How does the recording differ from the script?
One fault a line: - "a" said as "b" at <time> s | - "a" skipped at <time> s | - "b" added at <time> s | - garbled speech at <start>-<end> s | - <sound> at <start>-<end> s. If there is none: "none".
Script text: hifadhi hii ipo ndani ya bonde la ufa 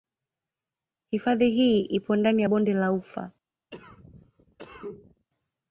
- cough at 3.7-5.3 s